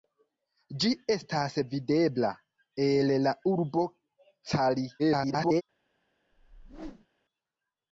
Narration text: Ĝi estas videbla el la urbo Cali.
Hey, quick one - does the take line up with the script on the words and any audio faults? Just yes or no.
no